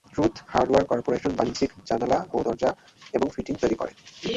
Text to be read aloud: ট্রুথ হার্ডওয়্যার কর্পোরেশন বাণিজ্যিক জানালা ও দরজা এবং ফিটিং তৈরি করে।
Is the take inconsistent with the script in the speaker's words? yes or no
no